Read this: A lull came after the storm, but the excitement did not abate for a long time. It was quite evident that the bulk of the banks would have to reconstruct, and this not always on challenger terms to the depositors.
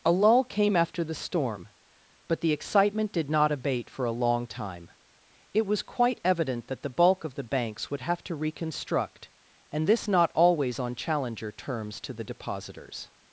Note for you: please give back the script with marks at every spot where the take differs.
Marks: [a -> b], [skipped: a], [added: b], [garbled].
A lull came after the storm, but the excitement did not abate for a long time. It was quite evident that the bulk of the banks would have to reconstruct, and this not always on challenger terms to the depositors.